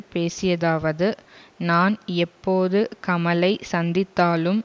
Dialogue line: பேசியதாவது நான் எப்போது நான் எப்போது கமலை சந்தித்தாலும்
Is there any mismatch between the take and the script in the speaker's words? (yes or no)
yes